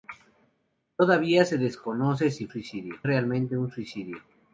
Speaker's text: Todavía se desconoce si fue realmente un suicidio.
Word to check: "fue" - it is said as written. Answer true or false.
false